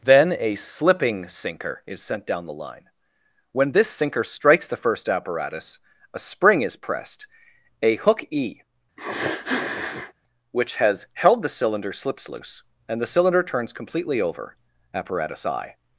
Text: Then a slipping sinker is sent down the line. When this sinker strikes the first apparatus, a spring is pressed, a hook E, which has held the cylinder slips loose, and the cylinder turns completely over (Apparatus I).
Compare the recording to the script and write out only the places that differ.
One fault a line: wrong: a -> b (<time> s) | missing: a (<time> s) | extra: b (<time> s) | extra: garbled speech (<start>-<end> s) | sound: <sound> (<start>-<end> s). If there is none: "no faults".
sound: sniff (9.0-10.1 s)